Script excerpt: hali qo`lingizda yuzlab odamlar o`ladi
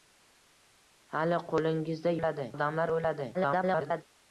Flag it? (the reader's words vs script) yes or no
yes